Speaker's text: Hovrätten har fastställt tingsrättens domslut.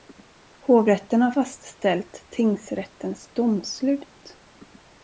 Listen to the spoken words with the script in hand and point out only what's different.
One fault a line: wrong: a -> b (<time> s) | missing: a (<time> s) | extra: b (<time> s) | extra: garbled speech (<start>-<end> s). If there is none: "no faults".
no faults